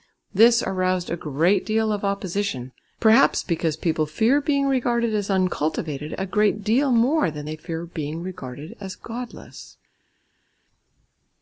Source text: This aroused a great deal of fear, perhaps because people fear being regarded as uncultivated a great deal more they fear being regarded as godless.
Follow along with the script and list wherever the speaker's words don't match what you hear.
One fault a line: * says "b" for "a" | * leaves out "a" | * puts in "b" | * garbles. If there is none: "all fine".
* says "opposition" for "fear"
* puts in "than"